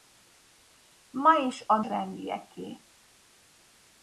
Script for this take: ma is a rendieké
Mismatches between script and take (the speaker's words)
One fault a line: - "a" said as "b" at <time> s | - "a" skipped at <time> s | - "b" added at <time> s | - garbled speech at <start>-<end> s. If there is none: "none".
none